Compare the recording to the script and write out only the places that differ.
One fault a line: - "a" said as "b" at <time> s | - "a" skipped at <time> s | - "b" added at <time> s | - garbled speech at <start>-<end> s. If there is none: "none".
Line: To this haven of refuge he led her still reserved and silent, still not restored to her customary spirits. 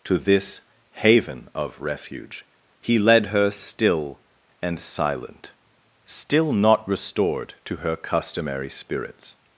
- "reserved" skipped at 4.2 s